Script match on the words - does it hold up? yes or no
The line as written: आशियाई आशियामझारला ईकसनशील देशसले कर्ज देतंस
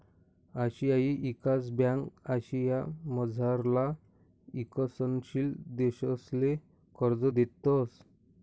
no